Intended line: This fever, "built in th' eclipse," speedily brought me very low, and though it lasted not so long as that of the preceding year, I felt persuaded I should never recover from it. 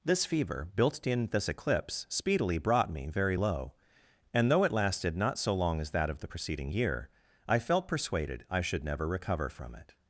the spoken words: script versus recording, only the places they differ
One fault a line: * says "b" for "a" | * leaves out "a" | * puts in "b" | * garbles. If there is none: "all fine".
* says "this" for "th"